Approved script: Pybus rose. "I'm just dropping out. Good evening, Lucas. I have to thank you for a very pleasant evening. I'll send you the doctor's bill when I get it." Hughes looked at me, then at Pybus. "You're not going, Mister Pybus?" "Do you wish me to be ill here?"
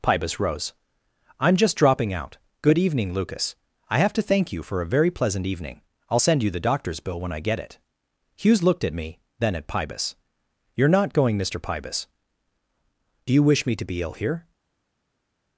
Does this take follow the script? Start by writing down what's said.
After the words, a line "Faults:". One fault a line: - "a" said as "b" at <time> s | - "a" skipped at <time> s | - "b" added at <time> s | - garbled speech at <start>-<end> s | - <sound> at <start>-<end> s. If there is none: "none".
Pybus rose. "I'm just dropping out. Good evening, Lucas. I have to thank you for a very pleasant evening. I'll send you the doctor's bill when I get it." Hughes looked at me, then at Pybus. "You're not going, Mister Pybus?" "Do you wish me to be ill here?"
Faults:
none